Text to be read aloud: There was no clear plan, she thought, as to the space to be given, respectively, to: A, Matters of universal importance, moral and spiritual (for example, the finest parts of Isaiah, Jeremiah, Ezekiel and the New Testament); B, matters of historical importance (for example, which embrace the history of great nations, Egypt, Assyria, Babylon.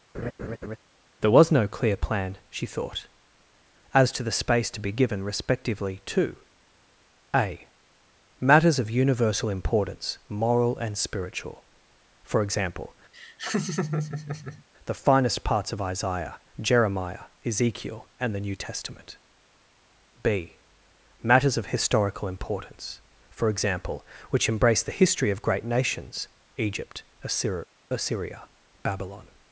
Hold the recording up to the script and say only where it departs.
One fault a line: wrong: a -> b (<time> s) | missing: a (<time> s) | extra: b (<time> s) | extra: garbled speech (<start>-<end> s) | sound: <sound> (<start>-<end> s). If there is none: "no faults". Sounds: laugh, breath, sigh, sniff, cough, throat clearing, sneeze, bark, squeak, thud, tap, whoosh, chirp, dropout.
sound: laugh (0.1-0.8 s)
sound: laugh (13.1-14.6 s)
extra: Assyria (27.9 s)